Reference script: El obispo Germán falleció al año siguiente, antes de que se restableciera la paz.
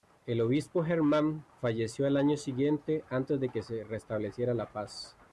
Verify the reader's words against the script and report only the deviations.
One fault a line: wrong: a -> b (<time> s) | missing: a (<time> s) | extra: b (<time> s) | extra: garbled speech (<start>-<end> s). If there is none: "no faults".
no faults